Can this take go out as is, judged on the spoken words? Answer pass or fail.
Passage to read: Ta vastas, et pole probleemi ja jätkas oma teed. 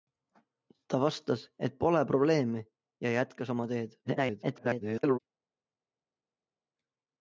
fail